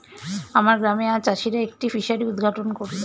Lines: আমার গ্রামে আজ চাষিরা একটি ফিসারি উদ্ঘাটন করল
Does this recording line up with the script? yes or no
yes